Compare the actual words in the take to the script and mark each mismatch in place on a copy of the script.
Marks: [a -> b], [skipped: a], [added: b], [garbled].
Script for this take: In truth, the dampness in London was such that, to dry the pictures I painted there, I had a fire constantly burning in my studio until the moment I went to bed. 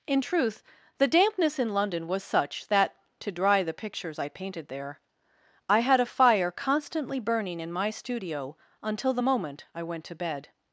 In truth, the dampness in London was such that, to dry the pictures I painted there, I had a fire constantly burning in my studio until the moment I went to bed.